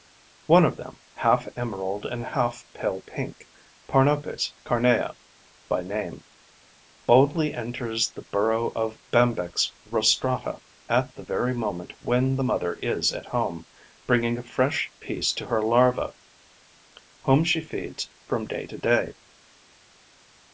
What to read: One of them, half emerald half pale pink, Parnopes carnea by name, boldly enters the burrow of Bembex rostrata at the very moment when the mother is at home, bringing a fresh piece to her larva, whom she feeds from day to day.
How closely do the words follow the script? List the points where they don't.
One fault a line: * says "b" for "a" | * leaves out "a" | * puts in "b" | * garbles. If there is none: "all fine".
* puts in "and"